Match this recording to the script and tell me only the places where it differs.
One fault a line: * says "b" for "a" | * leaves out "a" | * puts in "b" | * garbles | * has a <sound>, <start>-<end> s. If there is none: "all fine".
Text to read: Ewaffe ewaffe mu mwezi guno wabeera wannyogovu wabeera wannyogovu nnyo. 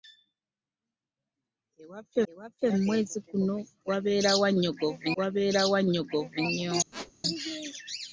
* has a squeak, 6.9-7.1 s